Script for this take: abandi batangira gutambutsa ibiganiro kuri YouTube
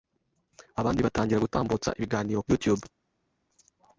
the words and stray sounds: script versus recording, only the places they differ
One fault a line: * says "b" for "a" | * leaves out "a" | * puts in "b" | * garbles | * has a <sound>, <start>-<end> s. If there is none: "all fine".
* leaves out "kuri"